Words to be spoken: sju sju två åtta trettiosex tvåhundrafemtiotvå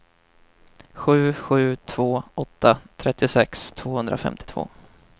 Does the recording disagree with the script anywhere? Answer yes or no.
no